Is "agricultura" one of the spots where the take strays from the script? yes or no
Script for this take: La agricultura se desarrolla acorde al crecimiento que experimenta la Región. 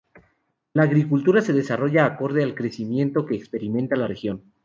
no